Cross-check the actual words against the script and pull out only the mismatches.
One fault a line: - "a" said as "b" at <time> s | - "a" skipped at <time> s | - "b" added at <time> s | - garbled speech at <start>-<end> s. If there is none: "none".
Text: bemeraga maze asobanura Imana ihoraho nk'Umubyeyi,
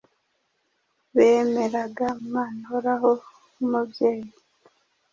- "maze asobanura" skipped at 2.0 s